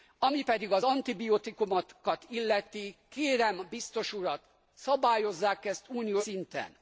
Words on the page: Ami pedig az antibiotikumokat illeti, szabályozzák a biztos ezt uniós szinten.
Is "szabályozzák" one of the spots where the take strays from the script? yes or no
yes